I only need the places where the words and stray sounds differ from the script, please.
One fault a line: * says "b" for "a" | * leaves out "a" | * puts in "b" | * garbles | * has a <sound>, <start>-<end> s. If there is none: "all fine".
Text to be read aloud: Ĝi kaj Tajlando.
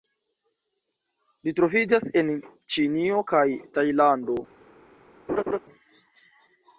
* puts in "troviĝas en Ĉinio"
* has a laugh, 5.3-5.6 s